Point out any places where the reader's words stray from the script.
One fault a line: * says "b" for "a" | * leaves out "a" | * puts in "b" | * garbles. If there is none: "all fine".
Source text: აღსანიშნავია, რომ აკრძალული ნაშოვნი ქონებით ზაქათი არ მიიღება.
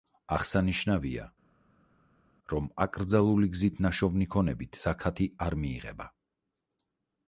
* puts in "გზით"